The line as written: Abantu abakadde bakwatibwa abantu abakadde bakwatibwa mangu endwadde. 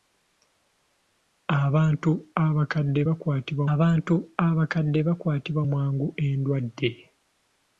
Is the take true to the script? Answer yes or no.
yes